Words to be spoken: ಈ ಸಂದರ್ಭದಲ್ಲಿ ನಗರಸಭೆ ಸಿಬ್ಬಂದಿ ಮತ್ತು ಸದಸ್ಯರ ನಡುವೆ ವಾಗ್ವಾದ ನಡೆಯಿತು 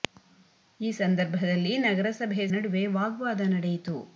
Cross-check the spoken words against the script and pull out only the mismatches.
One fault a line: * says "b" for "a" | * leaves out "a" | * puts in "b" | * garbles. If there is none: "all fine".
* leaves out "ಸಿಬ್ಬಂದಿ ಮತ್ತು ಸದಸ್ಯರ"